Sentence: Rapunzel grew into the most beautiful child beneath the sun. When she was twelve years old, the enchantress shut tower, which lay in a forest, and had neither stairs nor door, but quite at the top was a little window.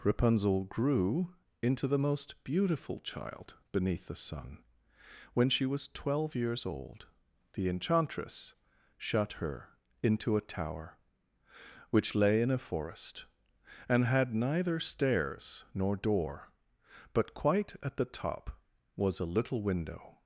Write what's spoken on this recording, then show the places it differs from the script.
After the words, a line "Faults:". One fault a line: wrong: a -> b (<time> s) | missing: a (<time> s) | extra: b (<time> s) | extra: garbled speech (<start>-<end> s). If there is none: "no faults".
Rapunzel grew into the most beautiful child beneath the sun. When she was twelve years old, the enchantress shut her into a tower, which lay in a forest, and had neither stairs nor door, but quite at the top was a little window.
Faults:
extra: her into a (9.3 s)